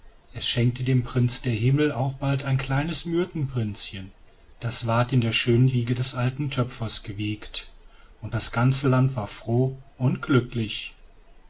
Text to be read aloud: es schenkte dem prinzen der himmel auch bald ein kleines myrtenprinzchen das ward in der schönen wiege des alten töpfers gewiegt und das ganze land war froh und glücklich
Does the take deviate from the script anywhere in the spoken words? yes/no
no